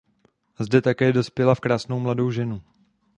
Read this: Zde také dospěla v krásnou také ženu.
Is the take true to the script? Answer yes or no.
no